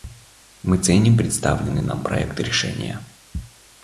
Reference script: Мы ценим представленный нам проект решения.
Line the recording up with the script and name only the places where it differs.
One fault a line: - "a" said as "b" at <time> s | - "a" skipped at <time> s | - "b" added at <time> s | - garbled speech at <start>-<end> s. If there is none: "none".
none